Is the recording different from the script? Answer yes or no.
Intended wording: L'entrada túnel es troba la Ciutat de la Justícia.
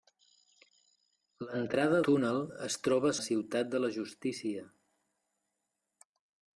no